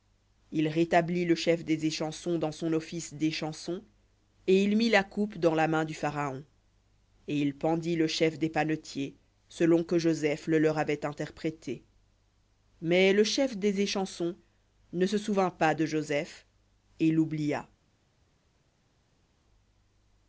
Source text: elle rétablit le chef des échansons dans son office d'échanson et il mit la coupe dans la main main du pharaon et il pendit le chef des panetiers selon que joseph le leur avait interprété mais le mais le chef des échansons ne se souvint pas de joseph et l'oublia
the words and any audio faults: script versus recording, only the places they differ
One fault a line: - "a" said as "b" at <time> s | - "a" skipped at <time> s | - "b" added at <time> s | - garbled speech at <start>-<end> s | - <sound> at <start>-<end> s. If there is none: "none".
- "elle" said as "il" at 0.5 s
- "main" skipped at 5.8 s
- "mais le" skipped at 13.3 s